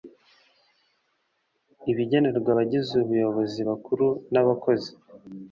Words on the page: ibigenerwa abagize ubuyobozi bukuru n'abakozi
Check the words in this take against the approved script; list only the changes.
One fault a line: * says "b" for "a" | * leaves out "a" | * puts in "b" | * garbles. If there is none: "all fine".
all fine